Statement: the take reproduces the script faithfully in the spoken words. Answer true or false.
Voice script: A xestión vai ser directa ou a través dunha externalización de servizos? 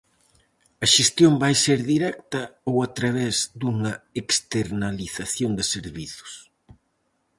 true